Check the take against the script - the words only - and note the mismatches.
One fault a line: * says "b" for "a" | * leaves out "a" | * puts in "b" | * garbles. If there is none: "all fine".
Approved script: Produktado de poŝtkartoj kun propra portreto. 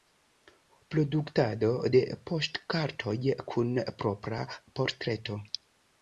all fine